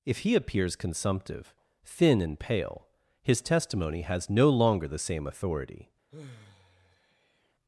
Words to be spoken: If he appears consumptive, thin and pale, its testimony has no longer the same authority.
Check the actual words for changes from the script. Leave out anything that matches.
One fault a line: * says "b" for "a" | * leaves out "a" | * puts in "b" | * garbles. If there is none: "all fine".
* says "his" for "its"